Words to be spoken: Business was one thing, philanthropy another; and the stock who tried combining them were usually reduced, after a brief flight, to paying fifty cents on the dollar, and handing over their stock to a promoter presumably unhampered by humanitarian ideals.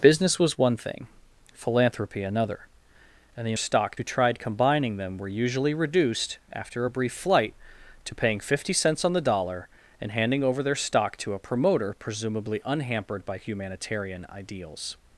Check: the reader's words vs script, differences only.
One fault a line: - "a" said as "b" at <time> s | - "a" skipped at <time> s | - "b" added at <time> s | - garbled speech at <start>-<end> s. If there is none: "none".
none